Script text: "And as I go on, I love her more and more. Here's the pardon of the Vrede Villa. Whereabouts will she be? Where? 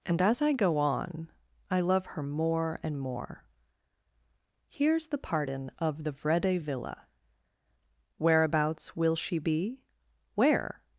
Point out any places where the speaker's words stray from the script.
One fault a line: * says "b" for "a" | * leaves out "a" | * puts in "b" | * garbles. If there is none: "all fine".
all fine